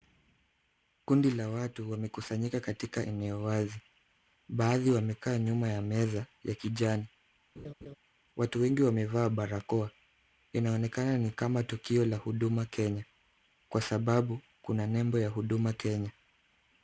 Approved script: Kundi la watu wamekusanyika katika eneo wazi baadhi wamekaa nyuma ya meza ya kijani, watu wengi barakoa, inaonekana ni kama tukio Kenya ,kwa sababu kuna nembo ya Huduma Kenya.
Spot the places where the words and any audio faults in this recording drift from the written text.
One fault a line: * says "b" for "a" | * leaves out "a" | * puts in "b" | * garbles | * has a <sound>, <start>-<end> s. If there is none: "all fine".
* has a laugh, 7.6-8.0 s
* puts in "wamevaa"
* puts in "la Huduma"